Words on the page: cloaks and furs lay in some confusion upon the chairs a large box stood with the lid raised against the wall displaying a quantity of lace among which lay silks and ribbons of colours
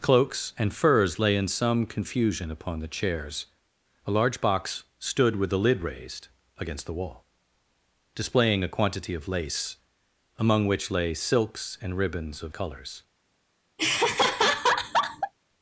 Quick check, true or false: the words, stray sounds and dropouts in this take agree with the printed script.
false